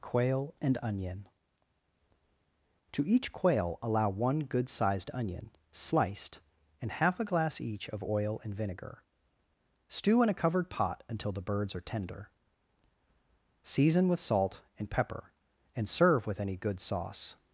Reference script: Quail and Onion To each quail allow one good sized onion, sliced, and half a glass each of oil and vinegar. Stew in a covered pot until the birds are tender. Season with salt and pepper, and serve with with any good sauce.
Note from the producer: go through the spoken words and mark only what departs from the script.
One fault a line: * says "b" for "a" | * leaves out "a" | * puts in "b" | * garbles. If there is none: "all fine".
* leaves out "with"